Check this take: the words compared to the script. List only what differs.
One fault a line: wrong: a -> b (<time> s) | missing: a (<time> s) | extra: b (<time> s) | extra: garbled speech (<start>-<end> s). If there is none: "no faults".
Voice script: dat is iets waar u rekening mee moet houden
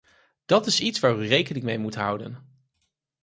no faults